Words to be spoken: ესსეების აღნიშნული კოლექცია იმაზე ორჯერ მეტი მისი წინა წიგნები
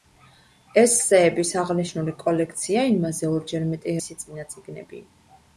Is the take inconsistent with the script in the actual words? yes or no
no